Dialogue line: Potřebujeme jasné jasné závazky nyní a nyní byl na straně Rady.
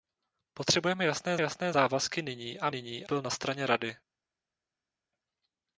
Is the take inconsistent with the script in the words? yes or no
no